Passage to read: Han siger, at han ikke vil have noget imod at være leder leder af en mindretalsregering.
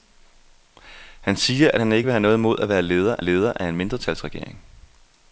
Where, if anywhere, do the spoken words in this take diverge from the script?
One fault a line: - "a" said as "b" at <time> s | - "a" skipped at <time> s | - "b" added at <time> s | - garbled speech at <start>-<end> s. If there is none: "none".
none